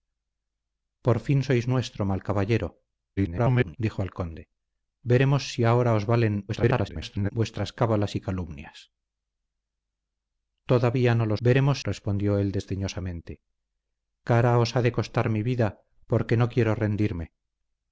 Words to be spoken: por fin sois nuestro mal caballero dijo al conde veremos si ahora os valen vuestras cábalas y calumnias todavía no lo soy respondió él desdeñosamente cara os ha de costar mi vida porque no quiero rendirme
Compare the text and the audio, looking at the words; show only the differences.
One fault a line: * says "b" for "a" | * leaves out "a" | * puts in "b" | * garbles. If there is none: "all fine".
* garbles
* garbles
* says "veremos" for "soy"